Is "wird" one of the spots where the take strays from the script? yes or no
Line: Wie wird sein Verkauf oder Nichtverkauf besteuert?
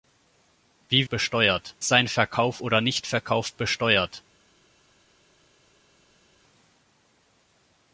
yes